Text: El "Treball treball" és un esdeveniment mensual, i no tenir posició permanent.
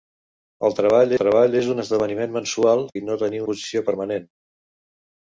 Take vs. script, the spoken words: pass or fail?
pass